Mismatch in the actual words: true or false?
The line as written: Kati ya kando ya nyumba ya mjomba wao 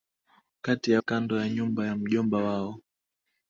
false